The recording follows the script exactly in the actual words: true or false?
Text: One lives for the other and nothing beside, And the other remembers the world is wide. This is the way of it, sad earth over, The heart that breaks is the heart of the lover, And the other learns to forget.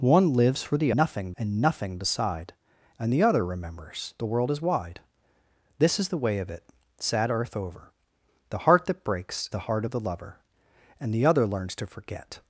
false